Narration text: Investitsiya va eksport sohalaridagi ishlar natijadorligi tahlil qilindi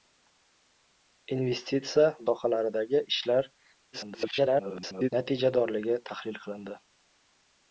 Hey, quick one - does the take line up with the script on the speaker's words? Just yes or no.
no